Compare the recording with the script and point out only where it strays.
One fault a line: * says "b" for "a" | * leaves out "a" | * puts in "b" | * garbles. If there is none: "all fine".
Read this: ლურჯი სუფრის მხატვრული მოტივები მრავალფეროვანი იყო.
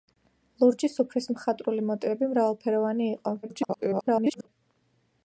* garbles